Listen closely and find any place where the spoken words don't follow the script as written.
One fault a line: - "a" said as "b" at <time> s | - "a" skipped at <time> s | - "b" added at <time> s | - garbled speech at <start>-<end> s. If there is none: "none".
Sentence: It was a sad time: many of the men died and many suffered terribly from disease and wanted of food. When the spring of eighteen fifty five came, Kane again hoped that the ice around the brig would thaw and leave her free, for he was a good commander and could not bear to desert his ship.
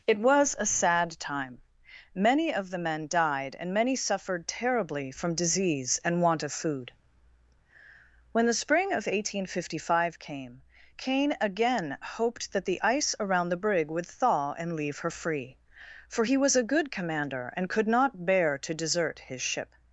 - "wanted" said as "want" at 6.2 s